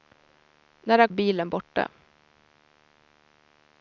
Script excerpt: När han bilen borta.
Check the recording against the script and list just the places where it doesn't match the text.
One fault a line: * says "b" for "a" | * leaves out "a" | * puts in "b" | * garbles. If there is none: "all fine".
all fine